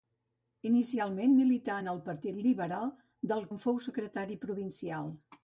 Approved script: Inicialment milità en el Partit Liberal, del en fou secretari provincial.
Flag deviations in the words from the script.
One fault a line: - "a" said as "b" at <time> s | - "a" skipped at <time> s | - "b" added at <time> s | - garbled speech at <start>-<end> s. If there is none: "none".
none